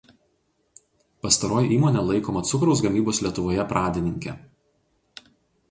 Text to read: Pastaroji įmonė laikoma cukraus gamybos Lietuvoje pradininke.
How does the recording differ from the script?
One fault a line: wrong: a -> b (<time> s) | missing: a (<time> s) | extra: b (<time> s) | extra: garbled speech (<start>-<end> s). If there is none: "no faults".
no faults